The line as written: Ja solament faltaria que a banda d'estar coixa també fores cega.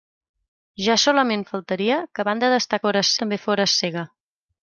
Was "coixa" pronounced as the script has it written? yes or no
no